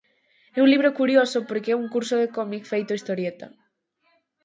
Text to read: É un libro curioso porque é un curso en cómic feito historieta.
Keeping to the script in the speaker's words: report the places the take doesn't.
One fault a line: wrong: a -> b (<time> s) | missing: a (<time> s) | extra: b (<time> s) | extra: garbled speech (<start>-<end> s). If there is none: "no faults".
wrong: en -> de (2.2 s)